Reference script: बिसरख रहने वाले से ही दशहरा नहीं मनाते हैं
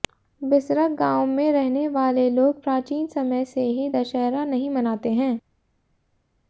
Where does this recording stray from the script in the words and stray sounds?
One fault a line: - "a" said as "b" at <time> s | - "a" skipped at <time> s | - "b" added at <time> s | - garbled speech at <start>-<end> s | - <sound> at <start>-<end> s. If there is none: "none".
- "गांव में" added at 0.9 s
- "लोग प्राचीन समय" added at 2.3 s